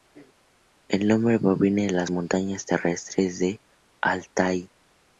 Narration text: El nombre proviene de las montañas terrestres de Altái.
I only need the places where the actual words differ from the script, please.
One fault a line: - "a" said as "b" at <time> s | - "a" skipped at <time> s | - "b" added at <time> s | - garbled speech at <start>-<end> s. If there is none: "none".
none